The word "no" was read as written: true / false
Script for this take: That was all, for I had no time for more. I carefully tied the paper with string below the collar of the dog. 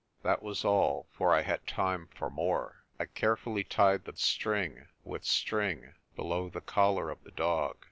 false